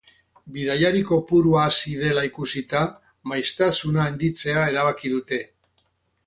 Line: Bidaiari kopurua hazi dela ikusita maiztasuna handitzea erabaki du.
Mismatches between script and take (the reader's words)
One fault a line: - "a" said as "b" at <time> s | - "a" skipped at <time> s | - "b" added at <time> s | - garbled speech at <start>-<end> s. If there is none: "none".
- "du" said as "dute" at 5.2 s